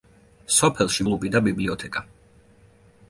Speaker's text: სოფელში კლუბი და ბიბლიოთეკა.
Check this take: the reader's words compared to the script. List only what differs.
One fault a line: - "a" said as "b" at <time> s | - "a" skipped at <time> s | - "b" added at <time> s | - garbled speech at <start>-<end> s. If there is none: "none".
none